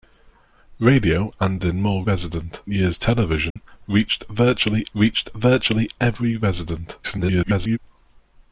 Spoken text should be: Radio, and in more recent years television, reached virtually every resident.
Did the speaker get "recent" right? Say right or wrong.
wrong